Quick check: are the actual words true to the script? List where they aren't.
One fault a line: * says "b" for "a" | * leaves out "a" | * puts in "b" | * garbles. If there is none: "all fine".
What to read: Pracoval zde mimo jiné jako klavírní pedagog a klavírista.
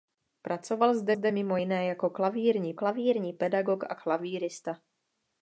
* puts in "zde"
* puts in "klavírní"